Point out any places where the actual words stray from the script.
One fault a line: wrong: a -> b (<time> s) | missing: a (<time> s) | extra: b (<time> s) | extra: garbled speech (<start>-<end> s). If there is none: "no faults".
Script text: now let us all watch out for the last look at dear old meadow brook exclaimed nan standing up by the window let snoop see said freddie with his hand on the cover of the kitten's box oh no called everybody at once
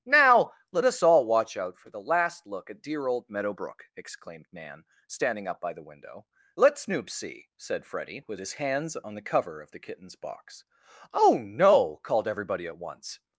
wrong: hand -> hands (8.5 s)